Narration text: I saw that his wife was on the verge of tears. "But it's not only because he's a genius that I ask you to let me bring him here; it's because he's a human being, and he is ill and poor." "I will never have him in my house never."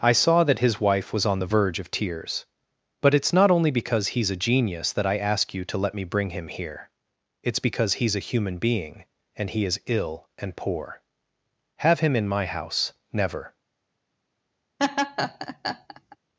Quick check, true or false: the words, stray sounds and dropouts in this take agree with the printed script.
false